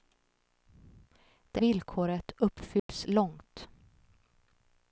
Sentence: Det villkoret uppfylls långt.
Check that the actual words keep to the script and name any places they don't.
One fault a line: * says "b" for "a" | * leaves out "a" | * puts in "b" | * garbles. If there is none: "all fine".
all fine